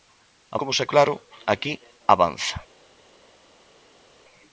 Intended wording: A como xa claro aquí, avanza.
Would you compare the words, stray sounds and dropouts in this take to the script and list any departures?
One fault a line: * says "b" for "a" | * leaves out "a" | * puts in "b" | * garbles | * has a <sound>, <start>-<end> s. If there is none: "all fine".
all fine